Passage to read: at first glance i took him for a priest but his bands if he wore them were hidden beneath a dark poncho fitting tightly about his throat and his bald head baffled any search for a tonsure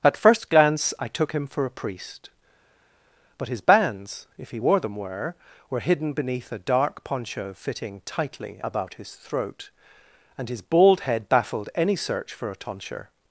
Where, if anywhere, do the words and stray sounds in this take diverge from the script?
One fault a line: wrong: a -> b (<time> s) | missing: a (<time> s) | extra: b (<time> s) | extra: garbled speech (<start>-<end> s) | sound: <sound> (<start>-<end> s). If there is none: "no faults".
extra: were (5.7 s)